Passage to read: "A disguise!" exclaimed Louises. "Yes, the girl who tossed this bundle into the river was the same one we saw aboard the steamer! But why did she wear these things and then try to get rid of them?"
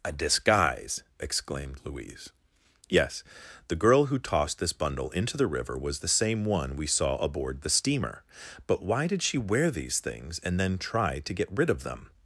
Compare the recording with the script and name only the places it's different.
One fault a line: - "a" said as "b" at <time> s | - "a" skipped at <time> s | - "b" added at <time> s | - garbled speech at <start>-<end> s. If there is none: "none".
- "Louises" said as "Louise" at 1.8 s